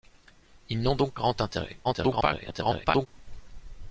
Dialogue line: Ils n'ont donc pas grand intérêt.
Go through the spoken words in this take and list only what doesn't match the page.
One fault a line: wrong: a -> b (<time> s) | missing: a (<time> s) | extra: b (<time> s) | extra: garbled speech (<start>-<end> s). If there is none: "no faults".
missing: pas (1.1 s)
extra: garbled speech (1.8-3.1 s)